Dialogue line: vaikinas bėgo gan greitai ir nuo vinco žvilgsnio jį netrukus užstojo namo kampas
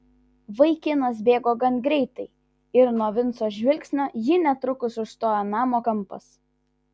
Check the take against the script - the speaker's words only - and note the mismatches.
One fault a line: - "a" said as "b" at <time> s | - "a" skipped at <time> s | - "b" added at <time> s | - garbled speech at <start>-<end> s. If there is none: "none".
none